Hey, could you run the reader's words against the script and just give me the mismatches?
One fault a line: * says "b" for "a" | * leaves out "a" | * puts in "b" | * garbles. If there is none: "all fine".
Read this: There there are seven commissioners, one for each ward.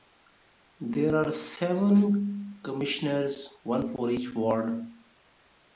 * leaves out "there"